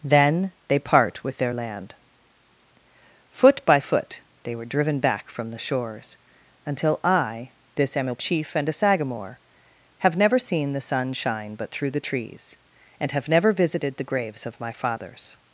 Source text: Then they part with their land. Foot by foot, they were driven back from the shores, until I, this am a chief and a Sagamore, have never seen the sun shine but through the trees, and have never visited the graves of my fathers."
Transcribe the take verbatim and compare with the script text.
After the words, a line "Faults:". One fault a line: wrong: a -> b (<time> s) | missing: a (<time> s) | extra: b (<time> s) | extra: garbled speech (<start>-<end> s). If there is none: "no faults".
Then they part with their land. Foot by foot, they were driven back from the shores, until I, this am a chief and a Sagamore, have never seen the sun shine but through the trees, and have never visited the graves of my fathers."
Faults:
no faults